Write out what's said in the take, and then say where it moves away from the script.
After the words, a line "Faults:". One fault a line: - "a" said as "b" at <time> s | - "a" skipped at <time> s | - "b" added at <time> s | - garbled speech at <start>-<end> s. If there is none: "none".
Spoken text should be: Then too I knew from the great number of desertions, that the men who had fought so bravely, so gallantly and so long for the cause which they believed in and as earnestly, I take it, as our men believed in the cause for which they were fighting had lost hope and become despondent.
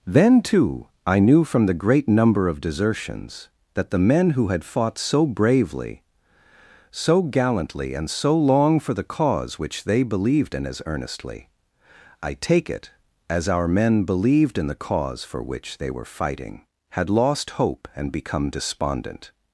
Then too I knew from the great number of desertions, that the men who had fought so bravely, so gallantly and so long for the cause which they believed in as earnestly, I take it, as our men believed in the cause for which they were fighting had lost hope and become despondent.
Faults:
- "and" skipped at 10.7 s